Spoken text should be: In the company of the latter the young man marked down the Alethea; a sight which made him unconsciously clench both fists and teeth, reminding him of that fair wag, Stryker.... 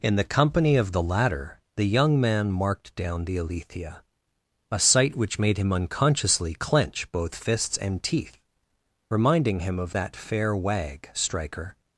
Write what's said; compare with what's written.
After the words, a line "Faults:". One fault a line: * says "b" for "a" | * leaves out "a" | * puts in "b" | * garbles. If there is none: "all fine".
In the company of the latter the young man marked down the Alethea; a sight which made him unconsciously clench both fists and teeth, reminding him of that fair wag, Stryker....
Faults:
all fine